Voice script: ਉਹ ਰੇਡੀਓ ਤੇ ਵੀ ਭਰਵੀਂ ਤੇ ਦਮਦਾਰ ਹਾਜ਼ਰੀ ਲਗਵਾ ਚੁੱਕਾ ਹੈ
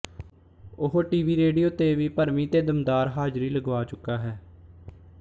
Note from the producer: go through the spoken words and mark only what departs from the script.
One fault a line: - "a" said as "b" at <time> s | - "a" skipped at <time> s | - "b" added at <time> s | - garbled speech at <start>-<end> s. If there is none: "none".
- "ਟੀਵੀ" added at 1.0 s